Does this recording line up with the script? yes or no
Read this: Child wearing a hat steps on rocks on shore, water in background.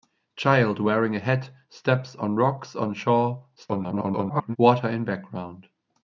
no